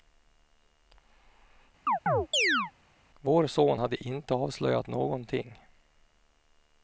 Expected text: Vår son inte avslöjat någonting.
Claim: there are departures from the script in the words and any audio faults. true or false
true